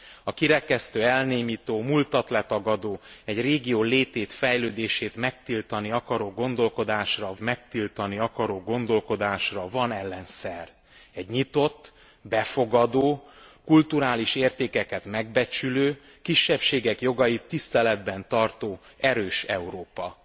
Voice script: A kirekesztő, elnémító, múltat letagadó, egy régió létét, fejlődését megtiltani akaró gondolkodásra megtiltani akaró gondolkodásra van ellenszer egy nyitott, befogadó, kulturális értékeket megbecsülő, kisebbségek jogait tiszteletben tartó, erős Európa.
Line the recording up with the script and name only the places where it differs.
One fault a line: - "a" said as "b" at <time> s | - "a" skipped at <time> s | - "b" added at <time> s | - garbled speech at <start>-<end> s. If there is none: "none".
none